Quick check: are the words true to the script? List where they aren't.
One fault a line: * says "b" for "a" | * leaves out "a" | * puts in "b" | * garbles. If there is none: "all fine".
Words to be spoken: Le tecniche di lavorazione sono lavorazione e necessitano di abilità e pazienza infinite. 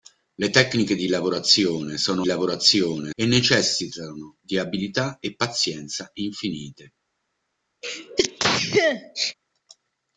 all fine